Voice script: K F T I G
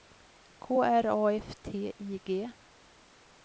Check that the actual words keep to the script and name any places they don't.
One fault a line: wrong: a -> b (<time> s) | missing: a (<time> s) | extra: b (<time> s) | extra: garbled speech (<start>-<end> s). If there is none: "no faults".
extra: R A (0.8 s)